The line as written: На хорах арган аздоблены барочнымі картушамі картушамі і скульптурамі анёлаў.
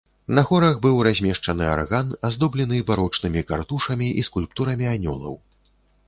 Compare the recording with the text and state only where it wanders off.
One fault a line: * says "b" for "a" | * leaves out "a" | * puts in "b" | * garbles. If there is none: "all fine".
* puts in "быў размешчаны"
* leaves out "картушамі"